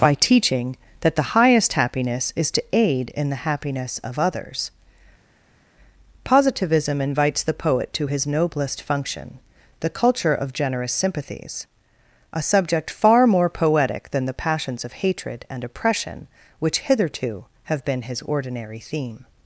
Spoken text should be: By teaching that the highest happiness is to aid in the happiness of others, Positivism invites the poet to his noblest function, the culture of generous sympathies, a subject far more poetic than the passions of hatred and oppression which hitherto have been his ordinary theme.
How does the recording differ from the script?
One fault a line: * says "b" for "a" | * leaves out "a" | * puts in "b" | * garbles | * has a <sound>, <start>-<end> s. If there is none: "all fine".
all fine